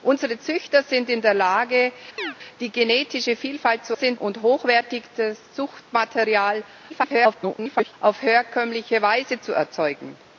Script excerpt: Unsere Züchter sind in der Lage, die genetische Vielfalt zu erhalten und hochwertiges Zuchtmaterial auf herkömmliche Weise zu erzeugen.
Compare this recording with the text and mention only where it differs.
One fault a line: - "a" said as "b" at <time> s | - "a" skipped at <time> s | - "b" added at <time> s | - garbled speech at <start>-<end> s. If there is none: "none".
- "erhalten" said as "sind" at 3.9 s
- garbled speech at 6.9-7.9 s